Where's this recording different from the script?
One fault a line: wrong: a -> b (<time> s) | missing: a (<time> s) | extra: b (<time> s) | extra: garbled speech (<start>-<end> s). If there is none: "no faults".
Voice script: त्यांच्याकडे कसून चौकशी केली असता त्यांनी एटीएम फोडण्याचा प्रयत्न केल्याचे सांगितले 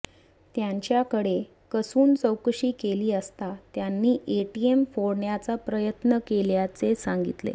no faults